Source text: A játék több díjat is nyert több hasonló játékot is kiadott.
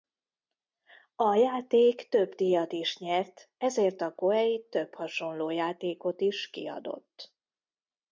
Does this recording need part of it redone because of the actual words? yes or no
yes